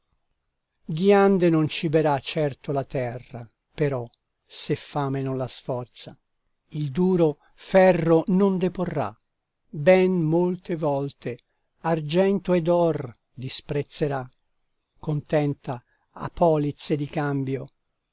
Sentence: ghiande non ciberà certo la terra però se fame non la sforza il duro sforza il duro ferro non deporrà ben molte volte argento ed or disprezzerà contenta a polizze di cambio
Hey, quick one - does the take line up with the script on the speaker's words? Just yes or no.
no